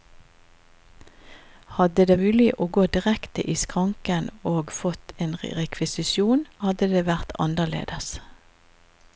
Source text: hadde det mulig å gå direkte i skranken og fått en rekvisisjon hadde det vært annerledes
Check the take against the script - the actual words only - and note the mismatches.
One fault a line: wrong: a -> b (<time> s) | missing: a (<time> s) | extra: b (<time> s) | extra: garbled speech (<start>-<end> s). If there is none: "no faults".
no faults